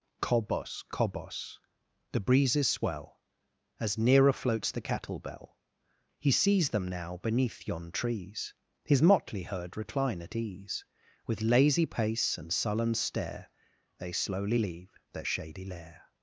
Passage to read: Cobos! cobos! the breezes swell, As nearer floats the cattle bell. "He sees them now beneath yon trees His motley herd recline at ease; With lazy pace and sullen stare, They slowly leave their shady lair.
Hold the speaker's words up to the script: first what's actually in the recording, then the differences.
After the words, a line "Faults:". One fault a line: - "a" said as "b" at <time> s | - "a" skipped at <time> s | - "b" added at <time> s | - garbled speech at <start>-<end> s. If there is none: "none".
Cobos! cobos! the breezes swell, As nearer floats the cattle bell. "He sees them now beneath yon trees His motley herd recline at ease; With lazy pace and sullen stare, They slowly leave their shady lair.
Faults:
none